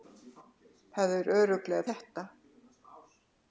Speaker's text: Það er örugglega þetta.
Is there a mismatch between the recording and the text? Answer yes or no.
no